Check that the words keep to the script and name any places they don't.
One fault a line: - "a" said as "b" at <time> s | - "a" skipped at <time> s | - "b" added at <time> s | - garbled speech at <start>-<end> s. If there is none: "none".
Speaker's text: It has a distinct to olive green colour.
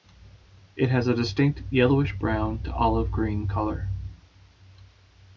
- "yellowish brown" added at 1.7 s